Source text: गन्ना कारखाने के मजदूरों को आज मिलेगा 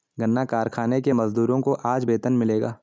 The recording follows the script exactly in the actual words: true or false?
false